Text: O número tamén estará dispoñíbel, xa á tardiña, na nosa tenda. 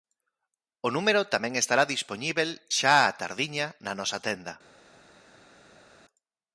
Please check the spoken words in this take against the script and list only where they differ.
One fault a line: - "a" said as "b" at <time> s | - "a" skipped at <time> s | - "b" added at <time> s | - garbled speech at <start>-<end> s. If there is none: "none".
none